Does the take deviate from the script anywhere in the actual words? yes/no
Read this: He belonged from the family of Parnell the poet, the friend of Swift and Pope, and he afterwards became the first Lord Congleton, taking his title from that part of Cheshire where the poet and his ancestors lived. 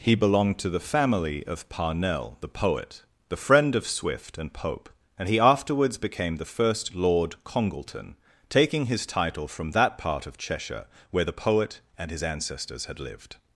yes